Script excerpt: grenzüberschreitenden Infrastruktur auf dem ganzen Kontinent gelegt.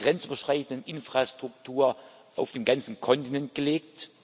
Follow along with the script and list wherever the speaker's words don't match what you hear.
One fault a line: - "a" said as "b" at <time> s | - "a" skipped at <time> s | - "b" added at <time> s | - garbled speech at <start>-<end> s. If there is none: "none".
none